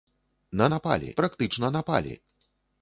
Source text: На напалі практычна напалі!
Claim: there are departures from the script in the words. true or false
false